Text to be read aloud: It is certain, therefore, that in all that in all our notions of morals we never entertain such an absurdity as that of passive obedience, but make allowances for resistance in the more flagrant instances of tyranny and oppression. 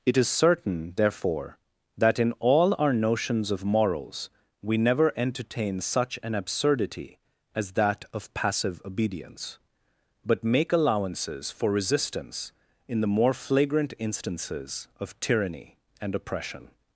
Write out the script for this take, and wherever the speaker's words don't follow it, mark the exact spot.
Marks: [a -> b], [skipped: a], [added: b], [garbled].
It is certain, therefore, that in all [skipped: that in all] our notions of morals we never entertain such an absurdity as that of passive obedience, but make allowances for resistance in the more flagrant instances of tyranny and oppression.